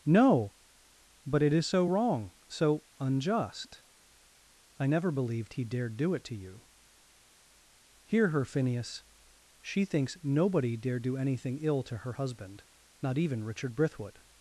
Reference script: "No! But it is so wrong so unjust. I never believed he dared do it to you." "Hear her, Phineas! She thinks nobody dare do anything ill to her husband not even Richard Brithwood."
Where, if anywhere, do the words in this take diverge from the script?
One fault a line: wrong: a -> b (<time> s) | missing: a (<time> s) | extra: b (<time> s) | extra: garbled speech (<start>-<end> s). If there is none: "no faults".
no faults